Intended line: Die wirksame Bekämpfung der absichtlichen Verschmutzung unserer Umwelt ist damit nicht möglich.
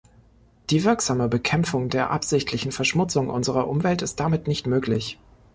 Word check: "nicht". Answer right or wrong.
right